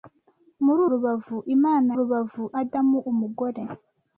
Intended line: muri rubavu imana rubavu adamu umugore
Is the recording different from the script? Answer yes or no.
no